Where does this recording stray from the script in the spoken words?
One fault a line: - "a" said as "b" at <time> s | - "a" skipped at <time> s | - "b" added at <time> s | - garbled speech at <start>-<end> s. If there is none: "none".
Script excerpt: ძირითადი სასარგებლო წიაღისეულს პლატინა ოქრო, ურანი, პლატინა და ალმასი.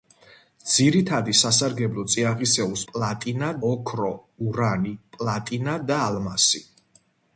none